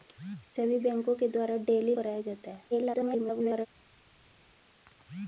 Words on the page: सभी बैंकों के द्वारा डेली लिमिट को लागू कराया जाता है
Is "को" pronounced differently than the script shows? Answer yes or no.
yes